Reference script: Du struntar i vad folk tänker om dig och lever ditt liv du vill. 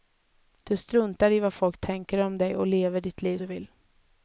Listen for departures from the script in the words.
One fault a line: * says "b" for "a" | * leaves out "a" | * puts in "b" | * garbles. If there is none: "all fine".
all fine